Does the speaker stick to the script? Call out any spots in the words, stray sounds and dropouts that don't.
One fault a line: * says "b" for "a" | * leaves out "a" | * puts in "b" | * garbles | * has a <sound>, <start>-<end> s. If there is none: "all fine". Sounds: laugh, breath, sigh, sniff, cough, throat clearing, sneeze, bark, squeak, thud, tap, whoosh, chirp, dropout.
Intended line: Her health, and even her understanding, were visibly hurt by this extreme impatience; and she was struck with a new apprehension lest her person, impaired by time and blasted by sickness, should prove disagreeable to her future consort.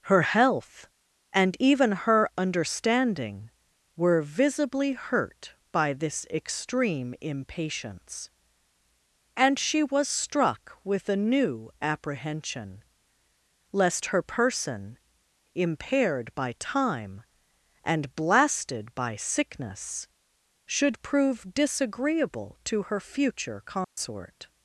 * has a dropout, 23.8-24.0 s